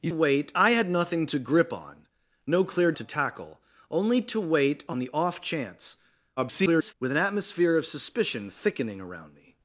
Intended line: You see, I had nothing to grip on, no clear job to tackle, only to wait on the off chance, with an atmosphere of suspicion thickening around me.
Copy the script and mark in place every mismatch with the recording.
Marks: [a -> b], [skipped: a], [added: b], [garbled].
You [see, -> wait] I had nothing to grip on, no clear [skipped: job] to tackle, only to wait on the off chance, [garbled] with an atmosphere of suspicion thickening around me.